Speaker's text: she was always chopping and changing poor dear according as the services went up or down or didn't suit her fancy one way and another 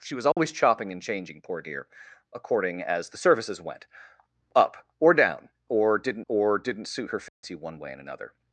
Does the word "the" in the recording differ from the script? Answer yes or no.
no